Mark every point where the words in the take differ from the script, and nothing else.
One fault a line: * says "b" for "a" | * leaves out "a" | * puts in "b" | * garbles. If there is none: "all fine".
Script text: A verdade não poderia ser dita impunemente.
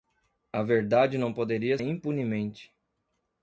* leaves out "ser dita"